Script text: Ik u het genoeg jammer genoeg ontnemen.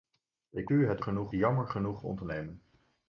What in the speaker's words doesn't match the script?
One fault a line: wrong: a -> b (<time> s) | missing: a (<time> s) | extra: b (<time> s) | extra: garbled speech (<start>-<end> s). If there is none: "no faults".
no faults